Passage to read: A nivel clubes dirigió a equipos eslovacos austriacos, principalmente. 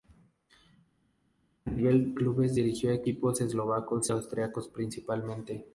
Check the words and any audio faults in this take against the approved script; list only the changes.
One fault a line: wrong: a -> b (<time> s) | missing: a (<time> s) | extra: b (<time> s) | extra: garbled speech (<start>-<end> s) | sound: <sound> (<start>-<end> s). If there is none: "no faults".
no faults